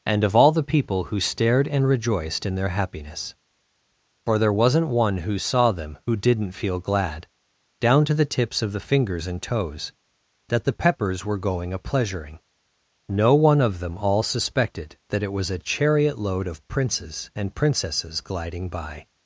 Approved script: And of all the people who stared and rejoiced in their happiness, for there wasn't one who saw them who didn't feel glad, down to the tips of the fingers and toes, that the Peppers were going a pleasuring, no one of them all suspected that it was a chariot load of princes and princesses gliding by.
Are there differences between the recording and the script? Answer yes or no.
no